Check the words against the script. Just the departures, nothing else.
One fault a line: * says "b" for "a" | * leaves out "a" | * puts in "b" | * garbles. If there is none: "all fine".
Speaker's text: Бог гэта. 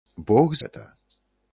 all fine